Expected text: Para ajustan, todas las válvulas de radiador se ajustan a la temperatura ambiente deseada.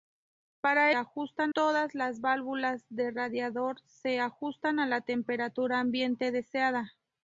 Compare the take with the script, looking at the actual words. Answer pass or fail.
pass